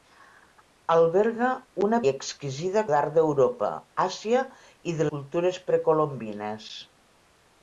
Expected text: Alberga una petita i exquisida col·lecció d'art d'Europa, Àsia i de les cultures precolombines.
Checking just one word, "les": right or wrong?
wrong